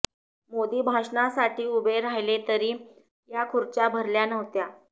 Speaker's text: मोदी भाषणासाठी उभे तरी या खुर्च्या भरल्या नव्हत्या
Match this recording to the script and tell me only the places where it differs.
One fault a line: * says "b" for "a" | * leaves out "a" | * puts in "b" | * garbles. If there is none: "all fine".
* puts in "राहिले"